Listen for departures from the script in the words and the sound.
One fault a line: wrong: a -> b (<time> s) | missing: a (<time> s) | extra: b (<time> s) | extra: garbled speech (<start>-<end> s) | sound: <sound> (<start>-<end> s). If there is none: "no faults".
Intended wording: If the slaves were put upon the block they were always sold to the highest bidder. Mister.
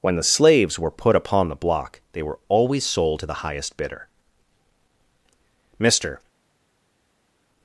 wrong: If -> When (0.0 s)